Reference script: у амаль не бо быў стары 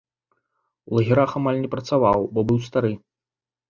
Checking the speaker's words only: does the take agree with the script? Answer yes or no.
no